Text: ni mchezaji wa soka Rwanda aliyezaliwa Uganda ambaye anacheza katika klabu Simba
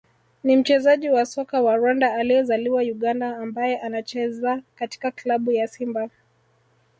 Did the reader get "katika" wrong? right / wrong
right